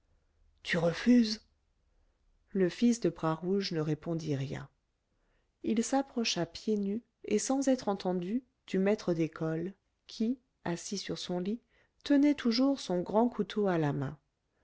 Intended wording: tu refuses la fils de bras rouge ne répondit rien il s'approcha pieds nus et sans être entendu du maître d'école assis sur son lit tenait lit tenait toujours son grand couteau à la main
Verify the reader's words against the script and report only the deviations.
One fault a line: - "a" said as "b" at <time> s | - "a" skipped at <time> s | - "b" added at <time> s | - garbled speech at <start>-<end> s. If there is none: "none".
- "la" said as "le" at 2.5 s
- "qui" added at 10.1 s
- "lit tenait" skipped at 12.3 s